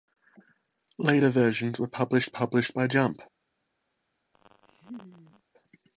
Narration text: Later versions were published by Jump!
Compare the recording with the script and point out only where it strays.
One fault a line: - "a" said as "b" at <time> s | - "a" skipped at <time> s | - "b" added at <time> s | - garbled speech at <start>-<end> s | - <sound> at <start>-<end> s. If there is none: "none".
- "published" added at 2.3 s
- laugh at 4.3-5.4 s